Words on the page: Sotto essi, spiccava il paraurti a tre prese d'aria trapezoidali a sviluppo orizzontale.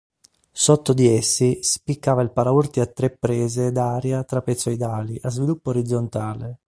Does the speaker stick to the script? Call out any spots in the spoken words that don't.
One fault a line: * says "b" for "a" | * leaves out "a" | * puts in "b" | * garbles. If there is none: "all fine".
* puts in "di"